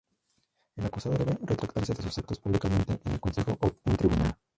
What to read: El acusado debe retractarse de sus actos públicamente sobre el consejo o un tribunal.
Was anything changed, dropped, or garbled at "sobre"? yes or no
yes